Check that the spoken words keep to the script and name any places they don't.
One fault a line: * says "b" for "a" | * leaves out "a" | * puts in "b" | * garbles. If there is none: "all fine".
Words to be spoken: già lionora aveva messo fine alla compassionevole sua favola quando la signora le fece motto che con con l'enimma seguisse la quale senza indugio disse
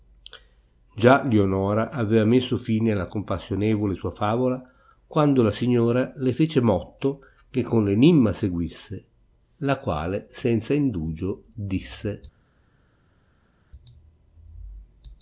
* leaves out "con"